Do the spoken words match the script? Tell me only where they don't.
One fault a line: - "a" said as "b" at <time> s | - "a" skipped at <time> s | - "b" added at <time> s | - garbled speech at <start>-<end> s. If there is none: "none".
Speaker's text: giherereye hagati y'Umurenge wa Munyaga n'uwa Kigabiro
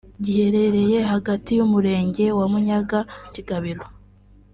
- "n'uwa" skipped at 3.0 s